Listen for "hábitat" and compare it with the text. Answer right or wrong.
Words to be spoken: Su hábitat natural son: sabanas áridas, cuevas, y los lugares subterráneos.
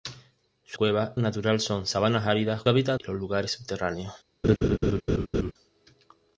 wrong